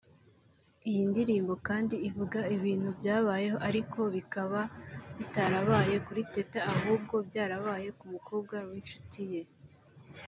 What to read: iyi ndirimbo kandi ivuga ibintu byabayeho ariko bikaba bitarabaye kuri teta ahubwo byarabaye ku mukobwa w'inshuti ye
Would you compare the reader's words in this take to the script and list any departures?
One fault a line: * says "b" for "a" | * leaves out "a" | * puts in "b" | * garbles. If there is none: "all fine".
all fine